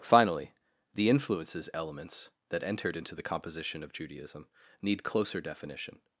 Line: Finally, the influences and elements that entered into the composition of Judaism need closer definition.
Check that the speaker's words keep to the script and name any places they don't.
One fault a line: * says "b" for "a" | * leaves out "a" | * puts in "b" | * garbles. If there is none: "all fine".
* leaves out "and"